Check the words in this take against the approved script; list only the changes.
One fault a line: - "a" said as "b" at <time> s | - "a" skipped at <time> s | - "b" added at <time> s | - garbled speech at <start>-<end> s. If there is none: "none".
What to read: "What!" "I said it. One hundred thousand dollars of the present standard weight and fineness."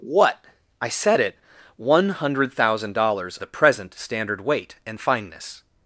- "of" skipped at 3.4 s